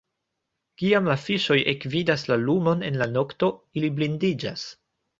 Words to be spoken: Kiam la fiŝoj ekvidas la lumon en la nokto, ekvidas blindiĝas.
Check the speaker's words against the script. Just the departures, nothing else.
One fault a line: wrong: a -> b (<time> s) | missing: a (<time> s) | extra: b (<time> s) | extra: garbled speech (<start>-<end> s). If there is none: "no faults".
wrong: ekvidas -> ili (3.8 s)